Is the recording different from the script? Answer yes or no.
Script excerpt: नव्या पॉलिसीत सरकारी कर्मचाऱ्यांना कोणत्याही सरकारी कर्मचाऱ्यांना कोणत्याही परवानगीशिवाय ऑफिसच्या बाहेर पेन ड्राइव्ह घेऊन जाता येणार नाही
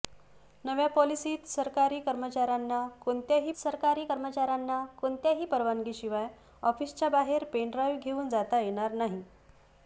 no